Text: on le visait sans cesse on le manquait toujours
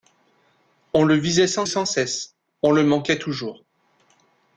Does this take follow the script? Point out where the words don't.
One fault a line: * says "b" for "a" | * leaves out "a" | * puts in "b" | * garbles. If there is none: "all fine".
* puts in "sans"